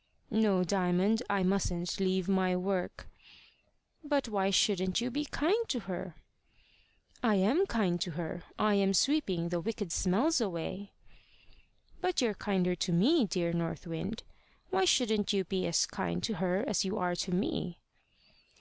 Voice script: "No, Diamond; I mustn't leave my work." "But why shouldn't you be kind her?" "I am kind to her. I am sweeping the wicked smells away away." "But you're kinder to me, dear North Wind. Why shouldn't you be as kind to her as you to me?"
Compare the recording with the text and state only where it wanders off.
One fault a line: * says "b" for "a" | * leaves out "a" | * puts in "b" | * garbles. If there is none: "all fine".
* puts in "to"
* leaves out "away"
* puts in "are"